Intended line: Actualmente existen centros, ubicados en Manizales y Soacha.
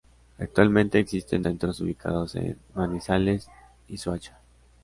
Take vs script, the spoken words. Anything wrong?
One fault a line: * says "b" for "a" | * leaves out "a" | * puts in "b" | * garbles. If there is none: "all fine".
all fine